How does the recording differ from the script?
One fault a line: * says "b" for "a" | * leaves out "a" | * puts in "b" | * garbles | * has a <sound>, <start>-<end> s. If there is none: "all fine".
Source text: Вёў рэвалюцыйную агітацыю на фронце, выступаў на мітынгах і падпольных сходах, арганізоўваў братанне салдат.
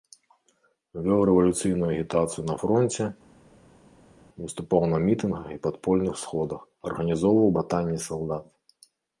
all fine